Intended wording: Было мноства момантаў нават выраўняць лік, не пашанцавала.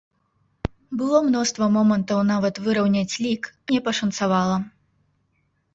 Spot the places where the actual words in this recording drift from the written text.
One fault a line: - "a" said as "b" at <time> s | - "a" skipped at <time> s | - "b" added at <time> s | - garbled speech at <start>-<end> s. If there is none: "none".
none